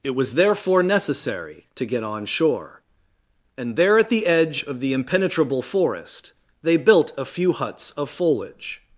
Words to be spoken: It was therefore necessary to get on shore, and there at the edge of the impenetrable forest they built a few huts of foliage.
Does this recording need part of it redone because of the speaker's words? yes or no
no